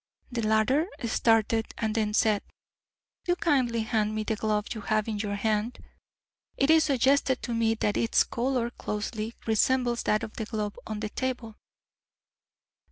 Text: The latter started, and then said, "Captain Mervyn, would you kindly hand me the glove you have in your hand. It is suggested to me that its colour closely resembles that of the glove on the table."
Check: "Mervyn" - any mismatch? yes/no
yes